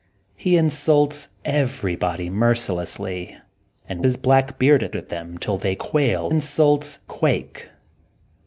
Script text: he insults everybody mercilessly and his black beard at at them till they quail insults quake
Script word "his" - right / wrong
right